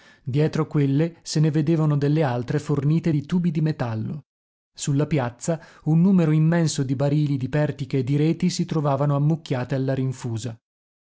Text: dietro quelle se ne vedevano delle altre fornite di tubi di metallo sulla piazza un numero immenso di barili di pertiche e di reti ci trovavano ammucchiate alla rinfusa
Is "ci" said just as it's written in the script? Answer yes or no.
no